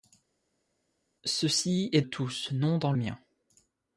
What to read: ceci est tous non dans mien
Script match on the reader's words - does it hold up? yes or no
yes